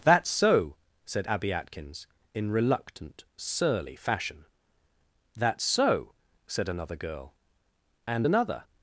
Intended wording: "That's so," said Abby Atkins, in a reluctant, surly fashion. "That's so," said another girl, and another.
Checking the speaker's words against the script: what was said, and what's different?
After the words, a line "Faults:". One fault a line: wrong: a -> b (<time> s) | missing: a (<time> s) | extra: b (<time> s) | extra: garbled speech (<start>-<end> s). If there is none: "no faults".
"That's so," said Abby Atkins, in reluctant, surly fashion. "That's so," said another girl, and another.
Faults:
missing: a (2.5 s)